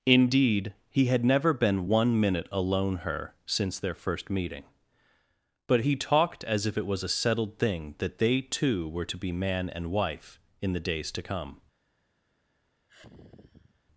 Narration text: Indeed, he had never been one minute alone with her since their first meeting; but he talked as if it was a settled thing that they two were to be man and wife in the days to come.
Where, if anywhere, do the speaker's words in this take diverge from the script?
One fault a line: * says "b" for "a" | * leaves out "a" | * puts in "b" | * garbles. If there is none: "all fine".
* leaves out "with"